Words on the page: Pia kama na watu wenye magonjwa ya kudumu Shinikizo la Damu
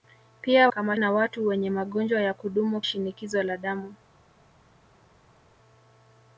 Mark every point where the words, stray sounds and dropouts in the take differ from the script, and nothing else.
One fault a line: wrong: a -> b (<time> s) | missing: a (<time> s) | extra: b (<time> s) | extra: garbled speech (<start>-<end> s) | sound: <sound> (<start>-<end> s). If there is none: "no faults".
no faults